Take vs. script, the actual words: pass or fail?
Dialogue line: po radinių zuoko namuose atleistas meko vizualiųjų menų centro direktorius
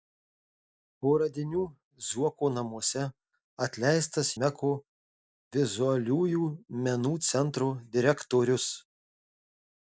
pass